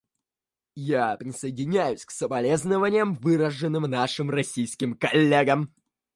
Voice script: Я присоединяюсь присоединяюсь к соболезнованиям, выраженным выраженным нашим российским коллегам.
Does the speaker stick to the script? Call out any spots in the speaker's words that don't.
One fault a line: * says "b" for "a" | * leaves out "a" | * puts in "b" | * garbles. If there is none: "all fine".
* leaves out "присоединяюсь"
* leaves out "выраженным"